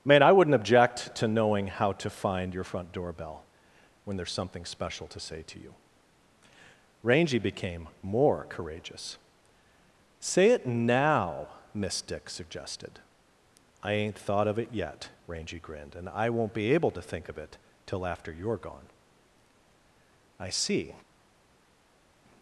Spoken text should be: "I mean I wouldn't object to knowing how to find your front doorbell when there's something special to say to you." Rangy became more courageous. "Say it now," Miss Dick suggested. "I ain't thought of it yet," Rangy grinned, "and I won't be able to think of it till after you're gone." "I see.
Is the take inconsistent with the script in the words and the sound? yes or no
yes